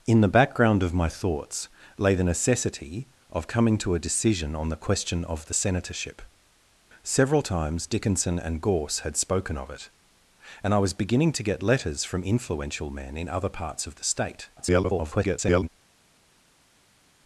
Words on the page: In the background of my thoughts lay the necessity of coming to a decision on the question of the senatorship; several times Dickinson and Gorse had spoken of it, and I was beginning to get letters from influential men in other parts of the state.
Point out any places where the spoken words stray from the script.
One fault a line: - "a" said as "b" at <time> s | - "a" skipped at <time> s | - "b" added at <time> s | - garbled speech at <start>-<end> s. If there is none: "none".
- garbled speech at 14.6-15.7 s